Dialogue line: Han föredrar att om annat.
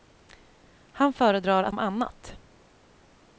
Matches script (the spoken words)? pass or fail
pass